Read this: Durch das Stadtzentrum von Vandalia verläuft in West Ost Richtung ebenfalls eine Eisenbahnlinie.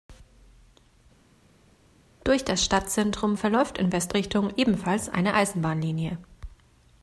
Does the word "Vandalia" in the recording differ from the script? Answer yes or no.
yes